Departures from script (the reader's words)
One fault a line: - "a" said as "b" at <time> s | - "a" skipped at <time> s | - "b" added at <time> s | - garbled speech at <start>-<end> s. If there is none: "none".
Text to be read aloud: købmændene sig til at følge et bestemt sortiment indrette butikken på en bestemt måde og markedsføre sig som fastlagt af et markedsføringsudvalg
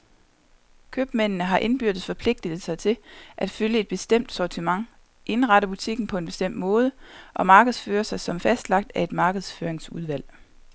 - "har indbyrdes forpligtet" added at 1.4 s